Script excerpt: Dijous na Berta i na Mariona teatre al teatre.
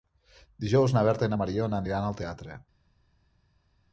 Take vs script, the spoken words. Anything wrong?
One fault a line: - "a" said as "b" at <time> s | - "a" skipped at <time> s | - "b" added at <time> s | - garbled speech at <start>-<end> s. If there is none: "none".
- "teatre" said as "aniran" at 1.8 s